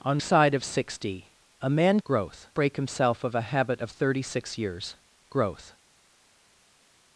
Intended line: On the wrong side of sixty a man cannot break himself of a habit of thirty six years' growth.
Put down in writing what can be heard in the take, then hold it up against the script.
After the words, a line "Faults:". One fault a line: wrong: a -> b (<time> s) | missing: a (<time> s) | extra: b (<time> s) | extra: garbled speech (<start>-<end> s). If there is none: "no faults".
On side of sixty a man growth break himself of a habit of thirty six years' growth.
Faults:
missing: the wrong (0.2 s)
wrong: cannot -> growth (2.0 s)